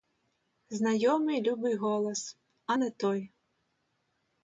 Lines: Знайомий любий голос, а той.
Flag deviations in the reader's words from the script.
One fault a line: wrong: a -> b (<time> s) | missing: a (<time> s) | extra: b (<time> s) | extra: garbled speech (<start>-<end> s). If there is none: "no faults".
extra: не (2.7 s)